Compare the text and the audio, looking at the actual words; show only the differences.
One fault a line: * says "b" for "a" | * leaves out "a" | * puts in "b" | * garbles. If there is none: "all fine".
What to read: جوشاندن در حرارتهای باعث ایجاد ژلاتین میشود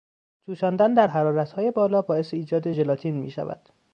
* puts in "بالا"